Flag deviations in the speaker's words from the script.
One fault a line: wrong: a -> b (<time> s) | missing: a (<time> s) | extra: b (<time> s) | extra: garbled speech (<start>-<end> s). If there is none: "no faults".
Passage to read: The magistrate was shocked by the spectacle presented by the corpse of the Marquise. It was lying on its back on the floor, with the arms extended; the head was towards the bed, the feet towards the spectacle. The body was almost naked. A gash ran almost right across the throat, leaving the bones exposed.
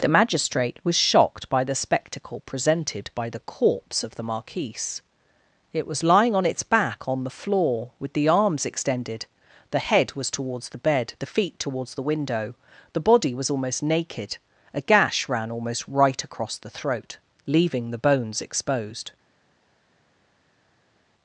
wrong: spectacle -> window (12.1 s)